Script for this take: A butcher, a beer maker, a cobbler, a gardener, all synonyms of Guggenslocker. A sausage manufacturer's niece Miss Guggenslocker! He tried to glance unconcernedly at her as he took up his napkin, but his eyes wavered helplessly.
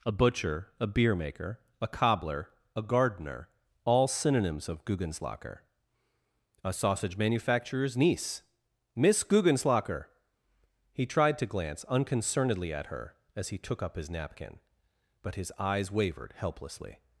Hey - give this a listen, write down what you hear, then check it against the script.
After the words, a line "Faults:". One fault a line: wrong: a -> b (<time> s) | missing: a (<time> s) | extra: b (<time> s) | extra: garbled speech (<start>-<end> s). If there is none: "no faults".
A butcher, a beer maker, a cobbler, a gardener, all synonyms of Guggenslocker. A sausage manufacturer's niece Miss Guggenslocker! He tried to glance unconcernedly at her as he took up his napkin, but his eyes wavered helplessly.
Faults:
no faults